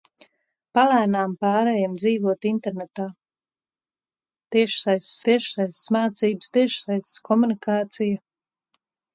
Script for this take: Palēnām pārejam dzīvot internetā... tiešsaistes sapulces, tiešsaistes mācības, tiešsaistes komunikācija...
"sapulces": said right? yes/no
no